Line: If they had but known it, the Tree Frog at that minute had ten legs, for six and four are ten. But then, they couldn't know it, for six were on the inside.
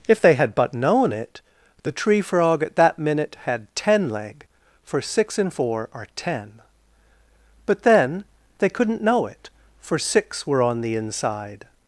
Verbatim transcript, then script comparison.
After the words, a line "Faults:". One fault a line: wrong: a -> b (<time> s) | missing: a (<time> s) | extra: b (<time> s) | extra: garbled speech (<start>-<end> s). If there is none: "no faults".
If they had but known it, the Tree Frog at that minute had ten leg, for six and four are ten. But then, they couldn't know it, for six were on the inside.
Faults:
wrong: legs -> leg (4.1 s)